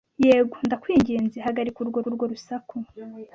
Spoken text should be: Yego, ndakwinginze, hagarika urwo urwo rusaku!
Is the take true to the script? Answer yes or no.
yes